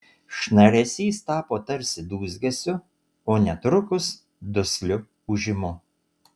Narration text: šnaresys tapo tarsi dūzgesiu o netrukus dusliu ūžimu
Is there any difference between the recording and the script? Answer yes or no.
no